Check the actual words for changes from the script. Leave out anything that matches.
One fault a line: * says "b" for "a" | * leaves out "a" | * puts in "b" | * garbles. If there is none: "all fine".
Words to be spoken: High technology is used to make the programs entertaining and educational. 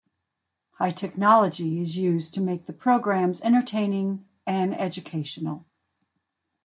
all fine